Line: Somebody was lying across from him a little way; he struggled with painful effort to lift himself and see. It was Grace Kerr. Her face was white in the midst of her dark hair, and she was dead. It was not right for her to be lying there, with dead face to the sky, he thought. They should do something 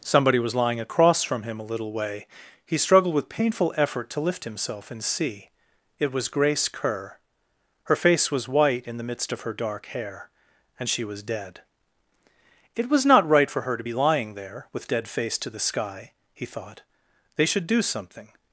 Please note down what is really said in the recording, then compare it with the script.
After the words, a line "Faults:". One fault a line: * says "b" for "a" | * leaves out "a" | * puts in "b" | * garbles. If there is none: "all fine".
Somebody was lying across from him a little way; he struggled with painful effort to lift himself and see. It was Grace Kerr. Her face was white in the midst of her dark hair, and she was dead. It was not right for her to be lying there, with dead face to the sky, he thought. They should do something
Faults:
all fine